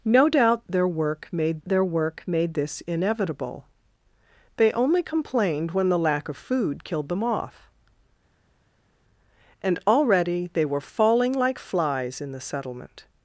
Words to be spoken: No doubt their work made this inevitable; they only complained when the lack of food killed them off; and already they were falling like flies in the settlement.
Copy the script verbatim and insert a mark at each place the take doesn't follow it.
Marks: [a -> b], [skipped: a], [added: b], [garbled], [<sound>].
No doubt their work made [added: their work made] this inevitable; they only complained when the lack of food killed them off; and already they were falling like flies in the settlement.